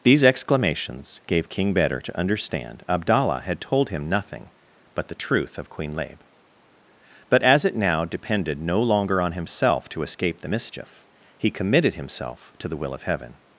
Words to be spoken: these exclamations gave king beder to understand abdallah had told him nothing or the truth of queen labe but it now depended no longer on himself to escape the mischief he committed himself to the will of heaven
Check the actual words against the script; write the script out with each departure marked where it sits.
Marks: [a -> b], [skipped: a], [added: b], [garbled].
these exclamations gave king beder to understand abdallah had told him nothing [or -> but] the truth of queen labe but [added: as] it now depended no longer on himself to escape the mischief he committed himself to the will of heaven